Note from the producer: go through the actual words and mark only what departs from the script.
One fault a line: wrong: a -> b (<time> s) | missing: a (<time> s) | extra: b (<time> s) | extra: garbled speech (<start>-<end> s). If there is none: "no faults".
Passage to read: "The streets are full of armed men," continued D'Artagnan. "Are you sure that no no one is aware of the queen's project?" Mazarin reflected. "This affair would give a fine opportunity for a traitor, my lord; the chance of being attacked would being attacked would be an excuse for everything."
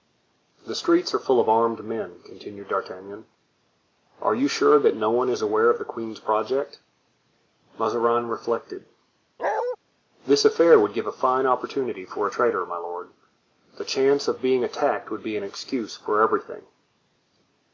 missing: no (5.1 s)
missing: being attacked would (15.2 s)